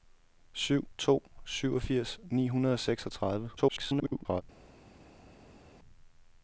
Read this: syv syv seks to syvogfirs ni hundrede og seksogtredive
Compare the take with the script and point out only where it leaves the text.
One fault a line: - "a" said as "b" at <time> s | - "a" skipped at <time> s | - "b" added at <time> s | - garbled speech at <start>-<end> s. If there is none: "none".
- "syv seks" skipped at 0.9 s
- garbled speech at 3.6-4.4 s